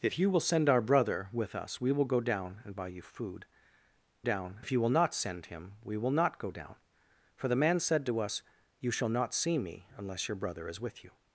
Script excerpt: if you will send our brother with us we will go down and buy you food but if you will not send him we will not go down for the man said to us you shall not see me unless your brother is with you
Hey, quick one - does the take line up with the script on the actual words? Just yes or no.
no